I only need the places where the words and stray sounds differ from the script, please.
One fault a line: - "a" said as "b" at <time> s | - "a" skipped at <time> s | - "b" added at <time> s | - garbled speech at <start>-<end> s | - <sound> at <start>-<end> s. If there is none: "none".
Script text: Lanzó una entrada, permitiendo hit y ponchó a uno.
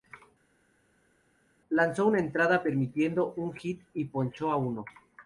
- "un" added at 3.4 s